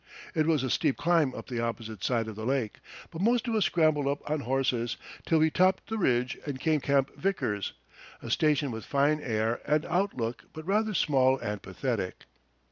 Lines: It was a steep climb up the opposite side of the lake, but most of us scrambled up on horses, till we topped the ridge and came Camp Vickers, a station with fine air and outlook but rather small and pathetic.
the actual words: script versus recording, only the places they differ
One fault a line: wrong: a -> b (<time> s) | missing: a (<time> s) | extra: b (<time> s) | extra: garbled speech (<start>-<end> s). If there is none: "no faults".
no faults